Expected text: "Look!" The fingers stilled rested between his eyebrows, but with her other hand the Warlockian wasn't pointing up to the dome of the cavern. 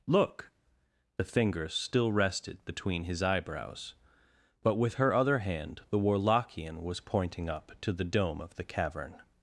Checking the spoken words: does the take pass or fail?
fail